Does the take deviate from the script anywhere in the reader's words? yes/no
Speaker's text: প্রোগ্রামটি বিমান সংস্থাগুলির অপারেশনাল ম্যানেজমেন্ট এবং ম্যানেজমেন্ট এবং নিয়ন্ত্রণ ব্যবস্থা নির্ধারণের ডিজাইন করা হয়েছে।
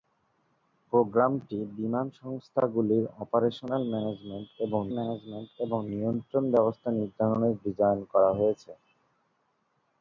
no